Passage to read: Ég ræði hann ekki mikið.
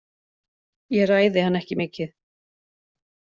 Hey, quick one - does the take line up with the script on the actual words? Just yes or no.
yes